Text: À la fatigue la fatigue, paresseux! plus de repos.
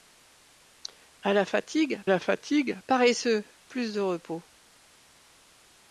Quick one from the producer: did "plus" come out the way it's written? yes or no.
yes